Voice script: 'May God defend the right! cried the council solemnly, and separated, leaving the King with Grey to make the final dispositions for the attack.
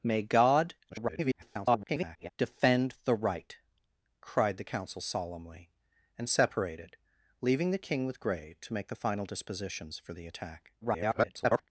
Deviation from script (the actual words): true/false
true